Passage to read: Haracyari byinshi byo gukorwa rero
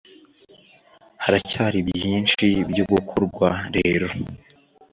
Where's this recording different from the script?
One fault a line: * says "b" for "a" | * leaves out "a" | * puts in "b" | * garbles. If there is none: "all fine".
all fine